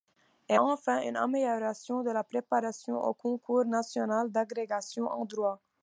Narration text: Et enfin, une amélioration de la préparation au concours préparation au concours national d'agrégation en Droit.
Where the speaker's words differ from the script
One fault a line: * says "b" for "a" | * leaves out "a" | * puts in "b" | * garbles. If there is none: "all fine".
* leaves out "préparation au concours"